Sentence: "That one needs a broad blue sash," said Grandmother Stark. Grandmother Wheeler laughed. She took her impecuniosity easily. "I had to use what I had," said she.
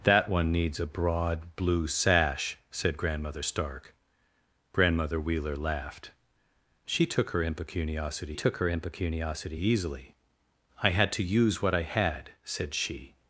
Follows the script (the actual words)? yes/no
no